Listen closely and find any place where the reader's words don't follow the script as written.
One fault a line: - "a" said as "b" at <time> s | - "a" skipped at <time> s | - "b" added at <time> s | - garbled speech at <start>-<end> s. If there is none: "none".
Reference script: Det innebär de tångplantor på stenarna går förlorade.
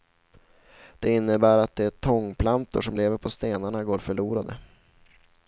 - "att" added at 1.6 s
- "som lever" added at 2.8 s